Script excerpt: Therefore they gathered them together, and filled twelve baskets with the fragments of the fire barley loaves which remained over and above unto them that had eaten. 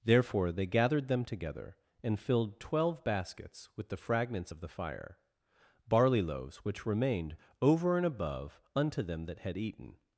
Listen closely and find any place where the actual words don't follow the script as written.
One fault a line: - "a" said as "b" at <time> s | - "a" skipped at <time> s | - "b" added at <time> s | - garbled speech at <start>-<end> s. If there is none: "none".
none